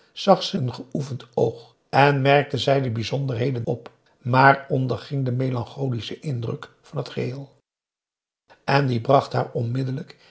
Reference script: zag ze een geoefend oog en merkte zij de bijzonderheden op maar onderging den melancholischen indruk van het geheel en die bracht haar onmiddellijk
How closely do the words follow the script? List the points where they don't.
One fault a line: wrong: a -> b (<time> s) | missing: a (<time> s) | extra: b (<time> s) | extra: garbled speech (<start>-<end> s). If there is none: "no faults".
no faults